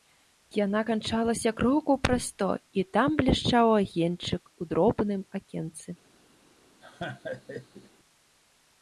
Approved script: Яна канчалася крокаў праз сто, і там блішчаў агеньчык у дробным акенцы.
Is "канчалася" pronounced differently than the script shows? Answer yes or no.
no